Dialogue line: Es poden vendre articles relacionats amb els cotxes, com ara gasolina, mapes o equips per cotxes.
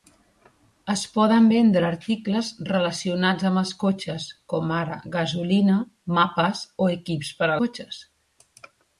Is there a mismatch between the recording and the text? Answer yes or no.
no